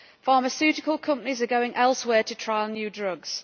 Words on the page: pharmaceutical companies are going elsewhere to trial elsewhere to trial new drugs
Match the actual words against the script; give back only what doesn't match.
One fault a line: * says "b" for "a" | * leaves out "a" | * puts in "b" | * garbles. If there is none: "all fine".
* leaves out "elsewhere to trial"